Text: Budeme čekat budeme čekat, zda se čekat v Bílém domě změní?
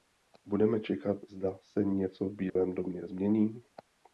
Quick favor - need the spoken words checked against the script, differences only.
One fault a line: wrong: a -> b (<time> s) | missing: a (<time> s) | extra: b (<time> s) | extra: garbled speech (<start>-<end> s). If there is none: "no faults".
missing: budeme čekat (1.2 s)
wrong: čekat -> něco (1.8 s)